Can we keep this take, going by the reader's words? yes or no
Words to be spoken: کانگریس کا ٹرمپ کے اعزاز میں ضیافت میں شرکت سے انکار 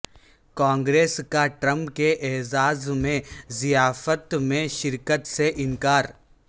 yes